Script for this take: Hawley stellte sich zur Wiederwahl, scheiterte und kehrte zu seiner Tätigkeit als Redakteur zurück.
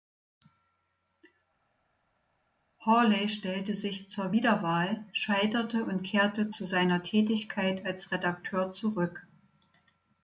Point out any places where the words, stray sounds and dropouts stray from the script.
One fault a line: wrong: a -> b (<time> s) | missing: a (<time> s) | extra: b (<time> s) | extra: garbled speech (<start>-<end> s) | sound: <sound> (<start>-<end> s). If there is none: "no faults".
no faults